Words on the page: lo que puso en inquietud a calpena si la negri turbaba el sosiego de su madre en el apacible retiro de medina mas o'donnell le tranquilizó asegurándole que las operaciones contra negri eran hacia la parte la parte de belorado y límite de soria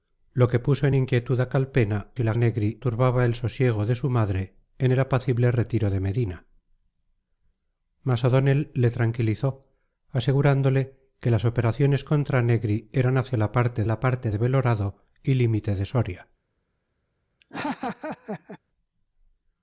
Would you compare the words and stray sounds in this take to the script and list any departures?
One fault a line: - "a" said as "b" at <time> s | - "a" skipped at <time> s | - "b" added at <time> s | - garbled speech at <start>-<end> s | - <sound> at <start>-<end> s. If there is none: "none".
- laugh at 17.4-18.6 s